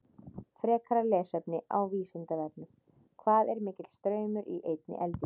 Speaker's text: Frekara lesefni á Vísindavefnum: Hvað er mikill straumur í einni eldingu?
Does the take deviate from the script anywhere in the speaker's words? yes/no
no